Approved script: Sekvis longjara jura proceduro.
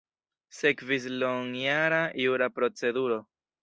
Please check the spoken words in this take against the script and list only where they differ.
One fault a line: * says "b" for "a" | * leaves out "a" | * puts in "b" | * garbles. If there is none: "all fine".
all fine